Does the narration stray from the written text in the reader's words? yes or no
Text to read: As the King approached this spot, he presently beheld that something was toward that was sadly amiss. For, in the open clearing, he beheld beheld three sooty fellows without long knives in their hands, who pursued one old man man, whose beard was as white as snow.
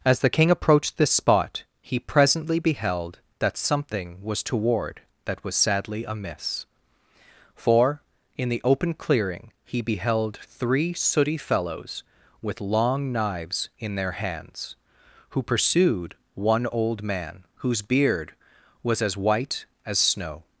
yes